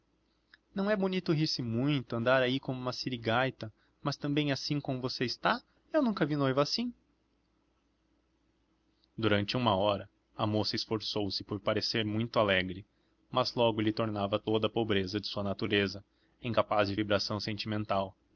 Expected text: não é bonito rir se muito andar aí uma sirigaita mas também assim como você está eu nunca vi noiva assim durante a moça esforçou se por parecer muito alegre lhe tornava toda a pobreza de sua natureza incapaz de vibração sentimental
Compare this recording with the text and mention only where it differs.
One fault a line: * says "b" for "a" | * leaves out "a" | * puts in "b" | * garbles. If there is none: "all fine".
* puts in "como"
* puts in "uma hora"
* puts in "mas logo"